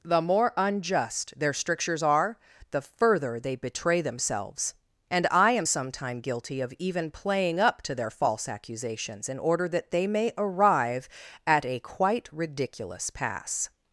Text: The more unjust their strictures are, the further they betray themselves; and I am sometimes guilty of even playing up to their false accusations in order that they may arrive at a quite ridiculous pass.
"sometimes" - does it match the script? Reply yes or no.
no